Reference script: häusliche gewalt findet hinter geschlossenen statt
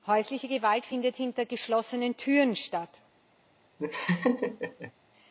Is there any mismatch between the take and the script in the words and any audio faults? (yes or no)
yes